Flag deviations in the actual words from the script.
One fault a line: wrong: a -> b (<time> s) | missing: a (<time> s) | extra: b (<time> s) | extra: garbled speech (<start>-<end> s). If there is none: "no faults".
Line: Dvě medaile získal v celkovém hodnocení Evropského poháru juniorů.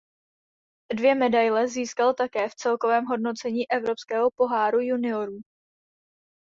extra: také (2.1 s)